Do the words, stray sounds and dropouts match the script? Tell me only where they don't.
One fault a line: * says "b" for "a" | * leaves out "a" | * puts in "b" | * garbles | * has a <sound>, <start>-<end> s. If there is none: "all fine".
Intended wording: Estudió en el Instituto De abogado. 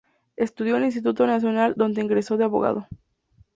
* puts in "Nacional donde egresó"